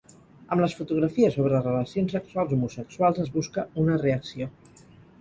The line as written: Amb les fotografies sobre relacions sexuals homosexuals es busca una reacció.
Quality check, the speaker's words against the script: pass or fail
pass